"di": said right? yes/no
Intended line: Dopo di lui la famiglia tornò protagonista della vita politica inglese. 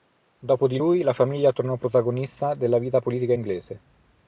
yes